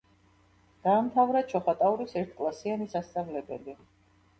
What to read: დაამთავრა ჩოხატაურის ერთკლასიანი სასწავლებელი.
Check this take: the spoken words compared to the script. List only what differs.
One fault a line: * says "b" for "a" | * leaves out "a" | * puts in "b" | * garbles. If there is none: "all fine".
all fine